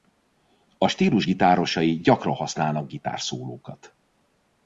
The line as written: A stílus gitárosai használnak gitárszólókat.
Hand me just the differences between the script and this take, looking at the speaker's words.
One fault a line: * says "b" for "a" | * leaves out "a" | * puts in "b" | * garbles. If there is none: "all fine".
* puts in "gyakran"